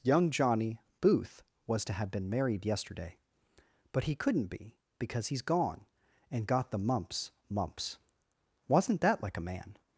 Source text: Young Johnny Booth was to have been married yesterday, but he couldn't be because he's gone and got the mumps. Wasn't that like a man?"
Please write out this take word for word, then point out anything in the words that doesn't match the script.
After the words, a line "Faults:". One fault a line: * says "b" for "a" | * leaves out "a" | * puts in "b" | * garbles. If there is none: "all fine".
Young Johnny Booth was to have been married yesterday, but he couldn't be because he's gone and got the mumps mumps. Wasn't that like a man?"
Faults:
* puts in "mumps"